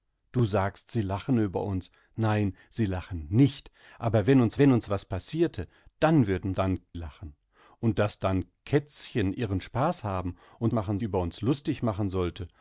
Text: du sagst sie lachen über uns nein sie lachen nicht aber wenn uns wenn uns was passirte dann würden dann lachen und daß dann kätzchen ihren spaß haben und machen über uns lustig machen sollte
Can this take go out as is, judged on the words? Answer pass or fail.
pass